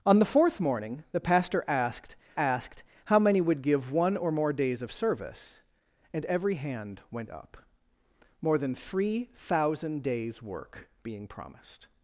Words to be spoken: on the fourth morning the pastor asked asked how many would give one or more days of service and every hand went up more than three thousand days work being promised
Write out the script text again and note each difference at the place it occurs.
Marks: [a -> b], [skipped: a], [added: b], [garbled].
on the fourth morning the pastor asked asked how many would give one or more days of service and every hand went up more than three thousand days work being promised